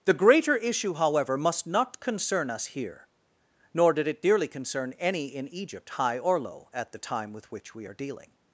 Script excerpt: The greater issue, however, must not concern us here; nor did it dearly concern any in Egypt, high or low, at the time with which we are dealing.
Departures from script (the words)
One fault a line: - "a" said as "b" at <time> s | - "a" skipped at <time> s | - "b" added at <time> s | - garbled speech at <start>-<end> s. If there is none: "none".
none